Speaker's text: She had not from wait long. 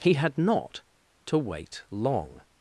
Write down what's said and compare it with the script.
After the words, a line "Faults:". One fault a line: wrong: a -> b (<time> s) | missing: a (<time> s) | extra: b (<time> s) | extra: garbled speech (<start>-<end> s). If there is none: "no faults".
He had not to wait long.
Faults:
wrong: She -> He (0.0 s)
wrong: from -> to (1.3 s)